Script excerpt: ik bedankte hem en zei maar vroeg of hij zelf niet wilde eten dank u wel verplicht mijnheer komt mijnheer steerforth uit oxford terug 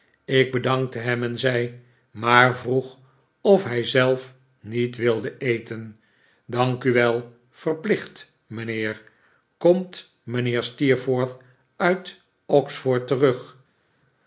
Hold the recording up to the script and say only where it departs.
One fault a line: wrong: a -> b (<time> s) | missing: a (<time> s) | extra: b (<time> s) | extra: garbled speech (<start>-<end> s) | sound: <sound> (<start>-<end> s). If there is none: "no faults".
no faults